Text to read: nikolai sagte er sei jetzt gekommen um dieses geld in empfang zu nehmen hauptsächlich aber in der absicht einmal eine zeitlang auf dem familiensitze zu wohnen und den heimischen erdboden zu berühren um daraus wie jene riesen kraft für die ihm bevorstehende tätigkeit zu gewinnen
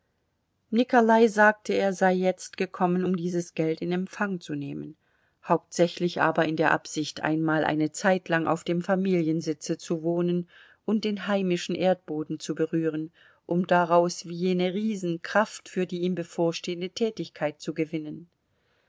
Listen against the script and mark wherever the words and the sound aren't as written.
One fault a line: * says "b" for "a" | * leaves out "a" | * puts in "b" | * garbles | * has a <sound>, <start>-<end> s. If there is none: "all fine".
all fine